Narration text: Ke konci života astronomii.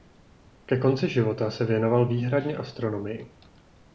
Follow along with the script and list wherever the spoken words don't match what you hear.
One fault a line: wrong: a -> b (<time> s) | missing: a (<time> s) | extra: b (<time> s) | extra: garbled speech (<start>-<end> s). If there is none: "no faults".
extra: se věnoval výhradně (1.5 s)